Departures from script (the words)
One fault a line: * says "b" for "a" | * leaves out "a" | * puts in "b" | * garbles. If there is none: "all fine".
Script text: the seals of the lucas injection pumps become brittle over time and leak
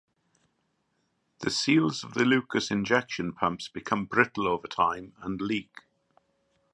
all fine